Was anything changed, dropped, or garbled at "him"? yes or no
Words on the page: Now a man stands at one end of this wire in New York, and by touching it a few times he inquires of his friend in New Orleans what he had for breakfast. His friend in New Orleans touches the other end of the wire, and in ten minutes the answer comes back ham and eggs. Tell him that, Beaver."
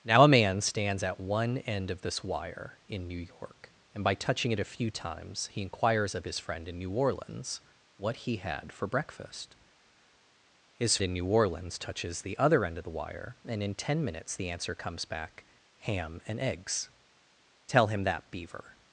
no